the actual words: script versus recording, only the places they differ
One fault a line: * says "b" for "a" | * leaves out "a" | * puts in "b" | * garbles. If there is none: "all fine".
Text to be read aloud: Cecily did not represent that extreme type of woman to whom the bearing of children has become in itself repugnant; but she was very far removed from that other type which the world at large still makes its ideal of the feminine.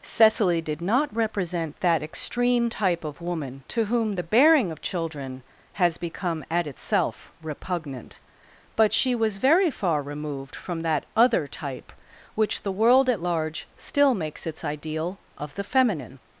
* says "at" for "in"